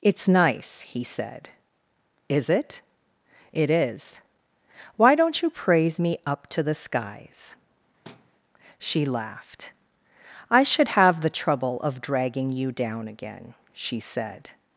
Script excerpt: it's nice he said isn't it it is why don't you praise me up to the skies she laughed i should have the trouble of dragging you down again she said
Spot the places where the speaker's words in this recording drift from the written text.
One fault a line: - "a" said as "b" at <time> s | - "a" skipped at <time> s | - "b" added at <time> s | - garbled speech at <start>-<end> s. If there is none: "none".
- "isn't" said as "is" at 2.3 s